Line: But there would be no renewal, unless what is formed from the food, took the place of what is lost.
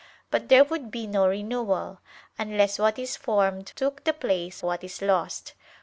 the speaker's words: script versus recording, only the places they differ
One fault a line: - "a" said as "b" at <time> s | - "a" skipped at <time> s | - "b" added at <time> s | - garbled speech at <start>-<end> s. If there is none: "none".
- "from the food" skipped at 3.7 s
- "of" skipped at 4.6 s